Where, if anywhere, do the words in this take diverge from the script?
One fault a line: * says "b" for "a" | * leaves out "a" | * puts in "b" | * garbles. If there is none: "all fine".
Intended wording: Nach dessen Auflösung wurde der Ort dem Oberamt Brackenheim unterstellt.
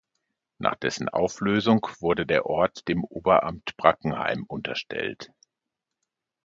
all fine